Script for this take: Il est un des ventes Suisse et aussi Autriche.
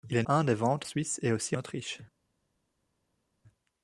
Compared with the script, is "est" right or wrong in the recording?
right